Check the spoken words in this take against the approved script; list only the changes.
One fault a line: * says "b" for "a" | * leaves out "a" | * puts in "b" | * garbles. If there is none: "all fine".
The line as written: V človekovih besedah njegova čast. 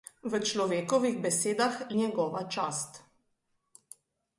all fine